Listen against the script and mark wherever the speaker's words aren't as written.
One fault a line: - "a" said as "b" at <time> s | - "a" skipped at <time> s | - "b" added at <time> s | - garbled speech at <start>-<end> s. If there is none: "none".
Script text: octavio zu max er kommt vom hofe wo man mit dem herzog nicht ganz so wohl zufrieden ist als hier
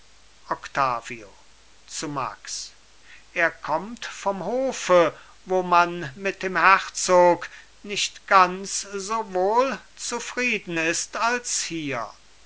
none